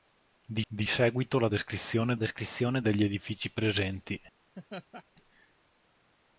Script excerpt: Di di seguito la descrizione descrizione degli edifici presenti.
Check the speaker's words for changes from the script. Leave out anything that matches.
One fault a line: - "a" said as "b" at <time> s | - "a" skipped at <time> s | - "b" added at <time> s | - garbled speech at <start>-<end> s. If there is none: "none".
none